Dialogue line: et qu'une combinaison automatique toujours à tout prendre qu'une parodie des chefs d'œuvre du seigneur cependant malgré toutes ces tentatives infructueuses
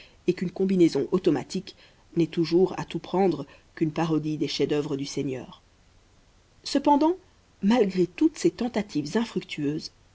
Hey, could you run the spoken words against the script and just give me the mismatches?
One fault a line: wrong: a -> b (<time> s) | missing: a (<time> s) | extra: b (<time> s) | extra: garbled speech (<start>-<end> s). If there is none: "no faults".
extra: n'est (2.1 s)